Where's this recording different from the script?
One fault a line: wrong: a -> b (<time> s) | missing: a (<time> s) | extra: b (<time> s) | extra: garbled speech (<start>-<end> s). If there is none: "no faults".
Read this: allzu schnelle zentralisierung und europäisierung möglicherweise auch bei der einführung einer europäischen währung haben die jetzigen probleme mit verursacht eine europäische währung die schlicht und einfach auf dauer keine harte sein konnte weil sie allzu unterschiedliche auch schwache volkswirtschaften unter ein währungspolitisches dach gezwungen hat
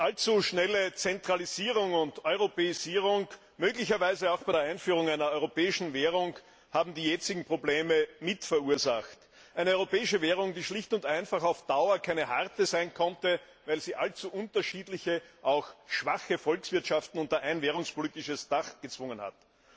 no faults